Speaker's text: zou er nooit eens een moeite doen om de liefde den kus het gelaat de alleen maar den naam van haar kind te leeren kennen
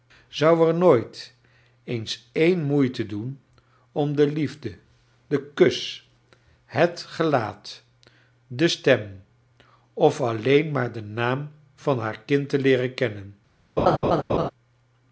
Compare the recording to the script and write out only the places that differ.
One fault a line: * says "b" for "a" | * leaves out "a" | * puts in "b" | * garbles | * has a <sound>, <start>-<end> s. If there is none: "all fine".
* puts in "stem of"
* has a laugh, 13.8-14.5 s